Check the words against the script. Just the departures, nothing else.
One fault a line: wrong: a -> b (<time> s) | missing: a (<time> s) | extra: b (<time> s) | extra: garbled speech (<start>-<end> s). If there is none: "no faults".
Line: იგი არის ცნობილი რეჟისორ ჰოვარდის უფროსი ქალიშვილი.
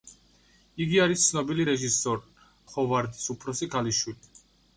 no faults